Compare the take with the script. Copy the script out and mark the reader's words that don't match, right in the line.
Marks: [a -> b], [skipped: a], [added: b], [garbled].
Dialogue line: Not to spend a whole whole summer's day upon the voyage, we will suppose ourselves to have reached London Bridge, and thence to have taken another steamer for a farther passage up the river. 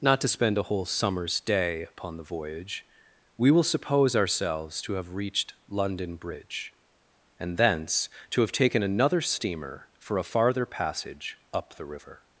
Not to spend a whole [skipped: whole] summer's day upon the voyage, we will suppose ourselves to have reached London Bridge, and thence to have taken another steamer for a farther passage up the river.